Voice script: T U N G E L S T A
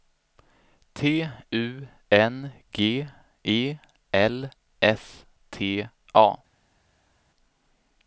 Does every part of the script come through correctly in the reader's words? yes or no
yes